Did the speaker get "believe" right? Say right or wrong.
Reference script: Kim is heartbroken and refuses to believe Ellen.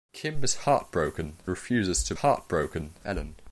wrong